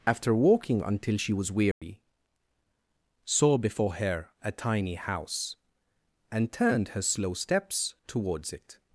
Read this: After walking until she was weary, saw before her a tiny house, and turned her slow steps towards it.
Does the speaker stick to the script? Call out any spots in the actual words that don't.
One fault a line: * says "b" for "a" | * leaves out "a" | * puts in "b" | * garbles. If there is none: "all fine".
all fine